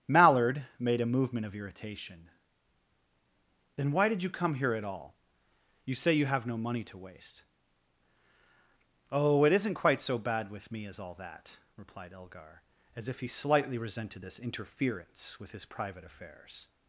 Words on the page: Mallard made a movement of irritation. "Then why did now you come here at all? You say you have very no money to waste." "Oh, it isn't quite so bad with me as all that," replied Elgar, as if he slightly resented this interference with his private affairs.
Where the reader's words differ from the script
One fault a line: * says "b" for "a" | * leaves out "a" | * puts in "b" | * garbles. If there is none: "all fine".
* leaves out "now"
* leaves out "very"